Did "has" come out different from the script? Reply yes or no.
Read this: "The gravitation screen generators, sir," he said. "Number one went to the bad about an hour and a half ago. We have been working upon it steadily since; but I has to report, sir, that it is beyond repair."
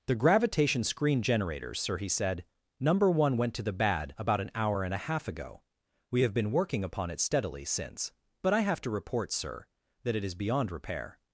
yes